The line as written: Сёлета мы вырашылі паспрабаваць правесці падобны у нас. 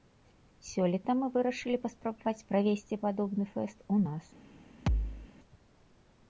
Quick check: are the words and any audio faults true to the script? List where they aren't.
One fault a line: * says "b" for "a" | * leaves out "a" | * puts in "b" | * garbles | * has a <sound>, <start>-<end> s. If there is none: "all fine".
* puts in "фэст"
* has a thud, 4.9-5.3 s